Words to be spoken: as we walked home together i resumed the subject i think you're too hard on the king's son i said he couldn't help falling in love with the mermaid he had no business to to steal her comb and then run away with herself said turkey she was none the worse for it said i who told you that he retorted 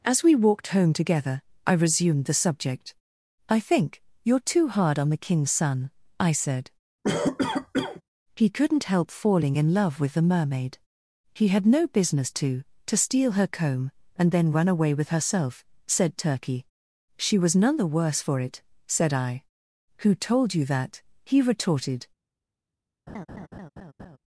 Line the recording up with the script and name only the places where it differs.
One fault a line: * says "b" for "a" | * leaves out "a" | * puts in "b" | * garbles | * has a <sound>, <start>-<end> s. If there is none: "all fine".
* has a cough, 7.0-8.0 s
* has a laugh, 23.1-24.2 s